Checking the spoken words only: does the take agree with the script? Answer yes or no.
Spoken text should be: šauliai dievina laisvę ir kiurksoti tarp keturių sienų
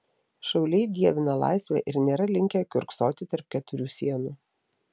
no